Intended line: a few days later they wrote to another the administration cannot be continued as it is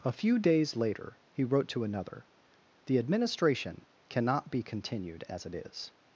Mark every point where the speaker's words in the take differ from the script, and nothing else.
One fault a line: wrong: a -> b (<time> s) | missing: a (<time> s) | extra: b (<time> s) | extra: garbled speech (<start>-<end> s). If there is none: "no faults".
wrong: they -> he (1.3 s)